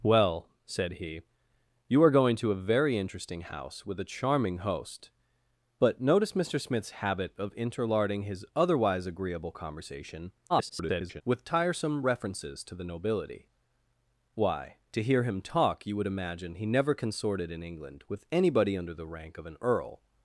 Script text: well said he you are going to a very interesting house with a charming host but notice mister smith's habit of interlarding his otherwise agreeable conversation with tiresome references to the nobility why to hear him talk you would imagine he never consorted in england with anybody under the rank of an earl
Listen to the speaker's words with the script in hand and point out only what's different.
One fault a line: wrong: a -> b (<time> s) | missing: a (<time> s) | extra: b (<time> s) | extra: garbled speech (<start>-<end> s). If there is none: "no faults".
extra: garbled speech (10.5-11.2 s)